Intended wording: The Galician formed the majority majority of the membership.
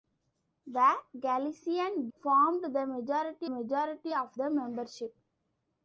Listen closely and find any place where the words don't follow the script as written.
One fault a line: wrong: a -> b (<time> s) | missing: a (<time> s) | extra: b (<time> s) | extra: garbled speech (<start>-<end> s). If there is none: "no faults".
no faults